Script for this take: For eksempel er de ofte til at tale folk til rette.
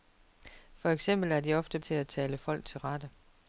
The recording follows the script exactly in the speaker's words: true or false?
true